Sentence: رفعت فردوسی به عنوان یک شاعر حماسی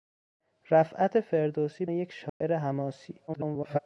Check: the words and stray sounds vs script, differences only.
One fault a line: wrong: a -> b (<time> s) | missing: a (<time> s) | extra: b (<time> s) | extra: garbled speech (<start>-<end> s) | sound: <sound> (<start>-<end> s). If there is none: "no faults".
missing: به عنوان (1.9 s)
sound: dropout (2.3-2.4 s)
extra: garbled speech (3.3-3.8 s)